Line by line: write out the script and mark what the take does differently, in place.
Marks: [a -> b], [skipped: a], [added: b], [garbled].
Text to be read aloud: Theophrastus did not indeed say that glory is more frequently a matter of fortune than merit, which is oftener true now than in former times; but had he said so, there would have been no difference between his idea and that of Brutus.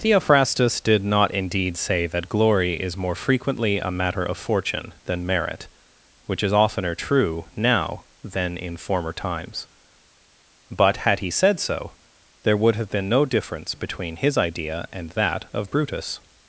Theophrastus did not indeed say that glory is more frequently a matter of fortune than merit, which is oftener true now than in former times; but had he said so, there would have been no difference between his idea and that of Brutus.